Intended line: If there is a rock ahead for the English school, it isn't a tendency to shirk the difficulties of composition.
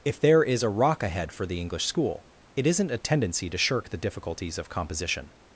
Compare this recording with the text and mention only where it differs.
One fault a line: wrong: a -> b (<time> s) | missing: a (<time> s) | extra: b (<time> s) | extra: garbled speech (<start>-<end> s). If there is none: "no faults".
no faults